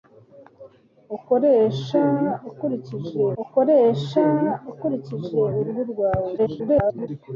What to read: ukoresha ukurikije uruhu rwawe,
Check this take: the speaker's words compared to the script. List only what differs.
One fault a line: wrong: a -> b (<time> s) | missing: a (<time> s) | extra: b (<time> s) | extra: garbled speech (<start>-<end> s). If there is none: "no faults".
extra: ukoresha ukurikije (3.4 s)
extra: garbled speech (6.4-7.1 s)